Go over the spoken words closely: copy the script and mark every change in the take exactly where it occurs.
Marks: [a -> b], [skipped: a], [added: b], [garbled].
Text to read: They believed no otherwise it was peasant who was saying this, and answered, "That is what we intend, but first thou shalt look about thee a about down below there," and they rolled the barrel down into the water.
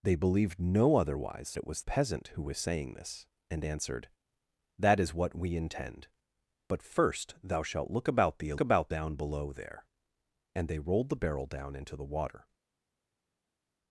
They believed no otherwise it was peasant who was saying this, and answered, "That is what we intend, but first thou shalt look about thee a about down below there," and they rolled the barrel down into the water.